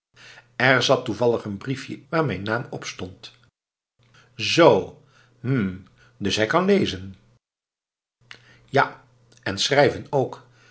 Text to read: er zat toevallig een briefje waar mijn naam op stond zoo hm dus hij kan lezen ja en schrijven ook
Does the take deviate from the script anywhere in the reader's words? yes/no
no